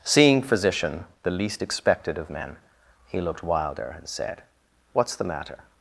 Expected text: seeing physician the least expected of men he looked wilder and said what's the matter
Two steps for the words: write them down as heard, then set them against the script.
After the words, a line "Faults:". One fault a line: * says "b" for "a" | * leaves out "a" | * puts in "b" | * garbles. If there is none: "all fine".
seeing physician the least expected of men he looked wilder and said what's the matter
Faults:
all fine